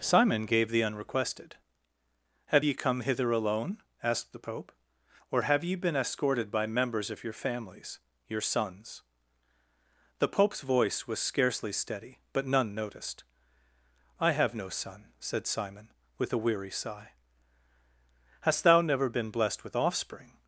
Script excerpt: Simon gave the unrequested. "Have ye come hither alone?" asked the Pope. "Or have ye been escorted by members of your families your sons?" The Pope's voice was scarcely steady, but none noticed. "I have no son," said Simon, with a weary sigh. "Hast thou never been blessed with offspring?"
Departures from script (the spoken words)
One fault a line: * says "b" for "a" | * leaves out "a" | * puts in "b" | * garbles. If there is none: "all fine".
all fine